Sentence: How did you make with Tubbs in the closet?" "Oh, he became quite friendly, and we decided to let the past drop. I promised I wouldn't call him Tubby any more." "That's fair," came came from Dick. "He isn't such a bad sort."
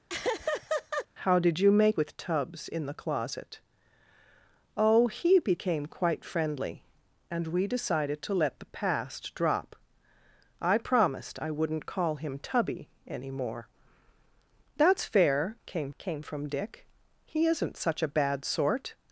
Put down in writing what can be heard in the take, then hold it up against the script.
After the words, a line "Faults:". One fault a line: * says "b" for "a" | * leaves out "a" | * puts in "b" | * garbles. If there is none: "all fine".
How did you make with Tubbs in the closet?" "Oh, he became quite friendly, and we decided to let the past drop. I promised I wouldn't call him Tubby any more." "That's fair," came came from Dick. "He isn't such a bad sort."
Faults:
all fine